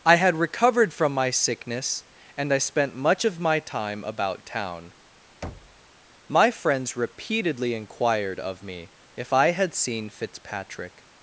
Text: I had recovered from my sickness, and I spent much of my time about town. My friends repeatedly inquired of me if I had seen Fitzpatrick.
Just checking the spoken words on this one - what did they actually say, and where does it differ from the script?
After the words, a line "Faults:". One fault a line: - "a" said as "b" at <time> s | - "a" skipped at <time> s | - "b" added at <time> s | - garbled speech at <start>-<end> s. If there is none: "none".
I had recovered from my sickness, and I spent much of my time about town. My friends repeatedly inquired of me if I had seen Fitzpatrick.
Faults:
none